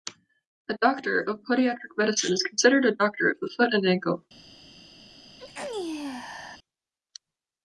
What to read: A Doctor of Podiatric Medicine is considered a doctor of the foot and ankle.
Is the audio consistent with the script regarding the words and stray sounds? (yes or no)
no